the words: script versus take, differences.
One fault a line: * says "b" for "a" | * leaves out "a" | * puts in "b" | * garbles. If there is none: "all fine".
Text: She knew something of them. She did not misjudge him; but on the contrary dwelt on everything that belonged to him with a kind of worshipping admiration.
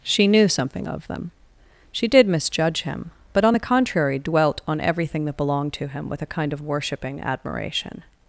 * leaves out "not"